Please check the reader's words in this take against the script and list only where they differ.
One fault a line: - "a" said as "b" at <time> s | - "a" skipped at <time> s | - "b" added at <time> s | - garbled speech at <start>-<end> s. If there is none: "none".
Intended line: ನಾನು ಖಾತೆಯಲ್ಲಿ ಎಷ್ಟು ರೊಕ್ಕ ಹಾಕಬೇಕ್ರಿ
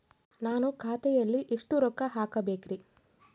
none